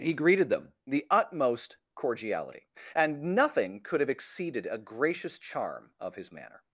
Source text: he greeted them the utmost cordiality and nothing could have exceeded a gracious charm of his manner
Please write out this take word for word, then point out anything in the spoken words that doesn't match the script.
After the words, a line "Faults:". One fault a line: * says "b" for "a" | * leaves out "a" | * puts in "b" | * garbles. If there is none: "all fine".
he greeted them the utmost cordiality and nothing could have exceeded a gracious charm of his manner
Faults:
all fine